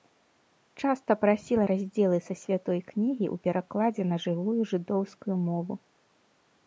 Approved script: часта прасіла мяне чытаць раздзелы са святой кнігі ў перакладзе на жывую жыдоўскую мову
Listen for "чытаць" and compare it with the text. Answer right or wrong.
wrong